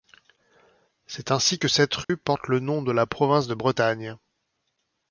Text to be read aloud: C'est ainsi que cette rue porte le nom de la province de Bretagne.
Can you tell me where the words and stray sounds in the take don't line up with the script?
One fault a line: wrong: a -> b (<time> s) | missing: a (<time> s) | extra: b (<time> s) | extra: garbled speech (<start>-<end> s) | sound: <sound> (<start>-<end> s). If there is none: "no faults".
sound: dropout (2.0-2.1 s)